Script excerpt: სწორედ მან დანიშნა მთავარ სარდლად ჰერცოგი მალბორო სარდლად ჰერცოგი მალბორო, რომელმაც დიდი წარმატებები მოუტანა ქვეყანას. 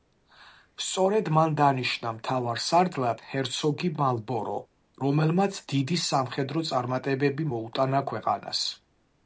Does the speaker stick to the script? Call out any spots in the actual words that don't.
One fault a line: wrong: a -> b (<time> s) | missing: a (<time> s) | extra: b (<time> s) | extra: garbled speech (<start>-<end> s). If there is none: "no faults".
missing: სარდლად ჰერცოგი მალბორო (4.6 s)
extra: სამხედრო (6.1 s)